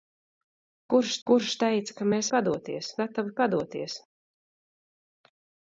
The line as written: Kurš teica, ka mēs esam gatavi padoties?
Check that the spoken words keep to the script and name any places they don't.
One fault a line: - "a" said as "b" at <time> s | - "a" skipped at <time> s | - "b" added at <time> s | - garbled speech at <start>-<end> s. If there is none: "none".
- "kurš" added at 1.3 s
- "esam" said as "padoties" at 2.3 s